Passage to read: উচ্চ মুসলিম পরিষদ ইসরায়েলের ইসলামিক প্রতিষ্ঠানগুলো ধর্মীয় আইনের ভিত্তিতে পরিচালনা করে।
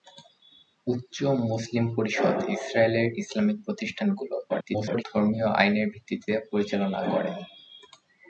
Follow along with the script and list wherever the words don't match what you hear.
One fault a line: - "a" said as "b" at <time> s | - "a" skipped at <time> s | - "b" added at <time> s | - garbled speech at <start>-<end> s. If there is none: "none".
- garbled speech at 4.5-5.0 s